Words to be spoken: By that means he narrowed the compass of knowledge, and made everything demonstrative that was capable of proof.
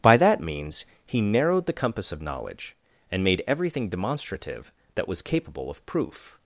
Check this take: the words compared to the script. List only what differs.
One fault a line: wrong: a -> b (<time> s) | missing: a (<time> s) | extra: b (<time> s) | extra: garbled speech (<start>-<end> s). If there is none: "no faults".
no faults